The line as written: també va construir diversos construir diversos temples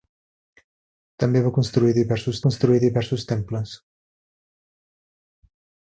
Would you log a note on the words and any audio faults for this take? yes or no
no